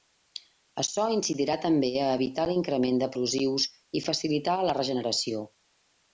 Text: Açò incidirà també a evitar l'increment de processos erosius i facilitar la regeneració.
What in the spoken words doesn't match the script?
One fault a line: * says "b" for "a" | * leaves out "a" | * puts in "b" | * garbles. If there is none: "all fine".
* leaves out "processos"